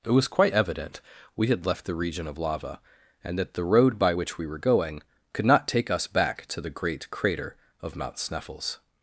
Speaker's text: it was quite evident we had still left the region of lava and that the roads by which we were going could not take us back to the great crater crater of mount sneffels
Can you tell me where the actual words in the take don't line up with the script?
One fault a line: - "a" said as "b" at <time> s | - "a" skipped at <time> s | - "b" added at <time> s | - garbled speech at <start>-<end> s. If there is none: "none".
- "still" skipped at 1.7 s
- "roads" said as "road" at 3.6 s
- "crater" skipped at 7.6 s